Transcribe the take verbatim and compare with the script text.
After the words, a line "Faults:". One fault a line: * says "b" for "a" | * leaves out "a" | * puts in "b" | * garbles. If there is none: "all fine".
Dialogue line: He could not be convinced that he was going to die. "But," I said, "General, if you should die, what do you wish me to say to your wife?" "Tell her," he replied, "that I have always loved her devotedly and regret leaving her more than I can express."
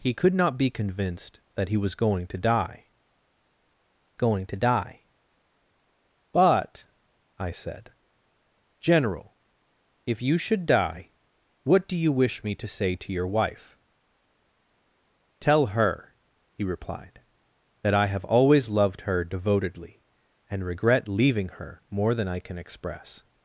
He could not be convinced that he was going to die going to die. "But," I said, "General, if you should die, what do you wish me to say to your wife?" "Tell her," he replied, "that I have always loved her devotedly and regret leaving her more than I can express."
Faults:
* puts in "going to die"